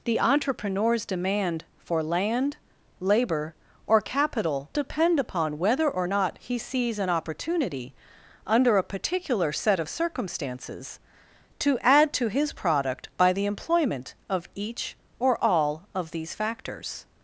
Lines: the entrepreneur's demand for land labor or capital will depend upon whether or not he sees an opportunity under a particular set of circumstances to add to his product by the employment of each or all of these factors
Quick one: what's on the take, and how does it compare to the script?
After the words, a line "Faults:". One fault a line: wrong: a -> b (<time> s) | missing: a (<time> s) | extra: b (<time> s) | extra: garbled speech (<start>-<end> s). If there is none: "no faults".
the entrepreneur's demand for land labor or capital depend upon whether or not he sees an opportunity under a particular set of circumstances to add to his product by the employment of each or all of these factors
Faults:
missing: will (4.7 s)